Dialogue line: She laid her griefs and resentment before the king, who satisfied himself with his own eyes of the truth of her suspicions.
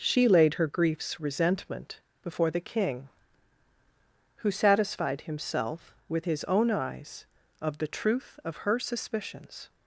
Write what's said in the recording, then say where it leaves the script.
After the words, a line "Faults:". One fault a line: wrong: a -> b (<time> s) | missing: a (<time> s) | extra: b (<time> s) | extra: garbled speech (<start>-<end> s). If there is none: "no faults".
She laid her griefs resentment before the king, who satisfied himself with his own eyes of the truth of her suspicions.
Faults:
missing: and (1.2 s)